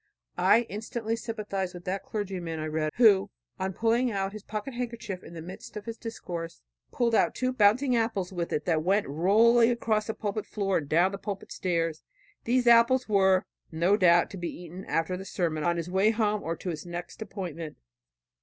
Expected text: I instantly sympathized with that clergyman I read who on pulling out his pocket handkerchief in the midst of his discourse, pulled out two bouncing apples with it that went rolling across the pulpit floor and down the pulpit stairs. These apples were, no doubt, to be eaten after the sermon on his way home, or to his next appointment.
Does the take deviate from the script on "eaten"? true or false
false